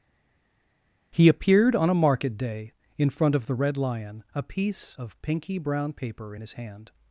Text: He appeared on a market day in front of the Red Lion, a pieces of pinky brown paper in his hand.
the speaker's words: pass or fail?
fail